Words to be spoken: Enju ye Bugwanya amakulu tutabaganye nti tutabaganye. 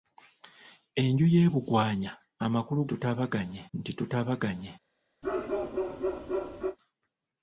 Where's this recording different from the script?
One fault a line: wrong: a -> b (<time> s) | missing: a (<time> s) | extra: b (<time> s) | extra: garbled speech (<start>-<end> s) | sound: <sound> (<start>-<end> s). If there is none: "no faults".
sound: bark (5.2-6.8 s)